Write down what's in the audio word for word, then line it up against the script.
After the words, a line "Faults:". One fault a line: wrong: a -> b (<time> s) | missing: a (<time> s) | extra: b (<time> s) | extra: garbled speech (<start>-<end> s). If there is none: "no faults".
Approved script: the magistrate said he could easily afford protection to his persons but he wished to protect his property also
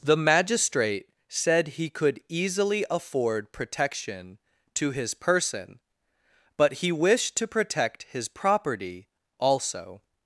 the magistrate said he could easily afford protection to his person but he wished to protect his property also
Faults:
wrong: persons -> person (5.1 s)